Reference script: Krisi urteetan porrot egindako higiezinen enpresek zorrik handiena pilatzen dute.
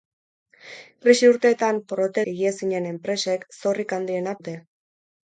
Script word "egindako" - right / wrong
wrong